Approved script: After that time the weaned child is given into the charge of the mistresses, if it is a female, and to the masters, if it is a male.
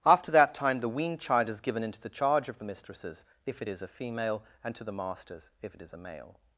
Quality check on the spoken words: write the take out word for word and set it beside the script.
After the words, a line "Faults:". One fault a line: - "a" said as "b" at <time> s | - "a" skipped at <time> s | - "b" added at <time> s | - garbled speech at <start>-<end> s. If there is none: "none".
After that time the weaned child is given into the charge of the mistresses, if it is a female, and to the masters, if it is a male.
Faults:
none